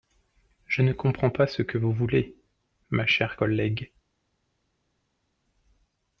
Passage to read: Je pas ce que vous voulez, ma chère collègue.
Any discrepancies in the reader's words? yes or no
yes